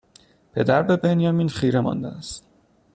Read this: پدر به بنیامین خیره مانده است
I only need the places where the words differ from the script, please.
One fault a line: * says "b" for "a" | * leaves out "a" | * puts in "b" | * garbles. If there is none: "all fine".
all fine